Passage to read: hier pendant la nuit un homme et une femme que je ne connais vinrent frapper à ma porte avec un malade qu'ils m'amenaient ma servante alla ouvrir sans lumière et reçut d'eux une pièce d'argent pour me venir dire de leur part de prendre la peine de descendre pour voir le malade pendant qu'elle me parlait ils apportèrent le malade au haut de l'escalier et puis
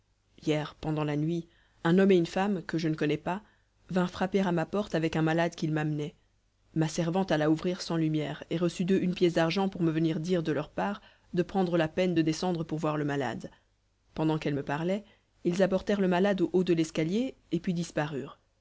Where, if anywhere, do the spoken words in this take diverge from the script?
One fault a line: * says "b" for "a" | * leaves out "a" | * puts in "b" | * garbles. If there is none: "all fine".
* puts in "pas"